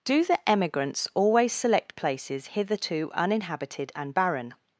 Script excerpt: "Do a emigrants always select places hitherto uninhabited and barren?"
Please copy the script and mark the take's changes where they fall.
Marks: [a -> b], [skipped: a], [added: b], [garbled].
"Do [a -> the] emigrants always select places hitherto uninhabited and barren?"